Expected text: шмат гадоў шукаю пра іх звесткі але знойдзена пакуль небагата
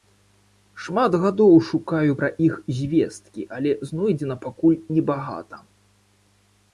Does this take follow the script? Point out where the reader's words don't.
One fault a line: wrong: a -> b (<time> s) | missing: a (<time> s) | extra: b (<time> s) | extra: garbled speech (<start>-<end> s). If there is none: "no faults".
no faults